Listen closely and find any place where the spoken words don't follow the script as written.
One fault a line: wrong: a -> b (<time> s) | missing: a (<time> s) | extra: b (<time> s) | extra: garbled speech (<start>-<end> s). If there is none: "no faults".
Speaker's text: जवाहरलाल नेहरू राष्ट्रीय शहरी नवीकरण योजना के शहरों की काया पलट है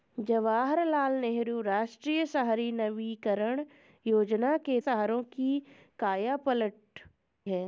no faults